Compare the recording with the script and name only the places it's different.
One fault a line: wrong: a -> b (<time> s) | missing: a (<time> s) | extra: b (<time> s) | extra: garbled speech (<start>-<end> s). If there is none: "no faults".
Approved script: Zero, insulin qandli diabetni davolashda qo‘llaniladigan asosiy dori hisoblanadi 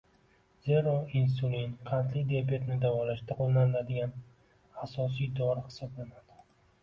no faults